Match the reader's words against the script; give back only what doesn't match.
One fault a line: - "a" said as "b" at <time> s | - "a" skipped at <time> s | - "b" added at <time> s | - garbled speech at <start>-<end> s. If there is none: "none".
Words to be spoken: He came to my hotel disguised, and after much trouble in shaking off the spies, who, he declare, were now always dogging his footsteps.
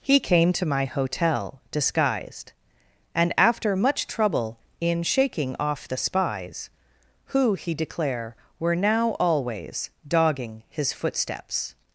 none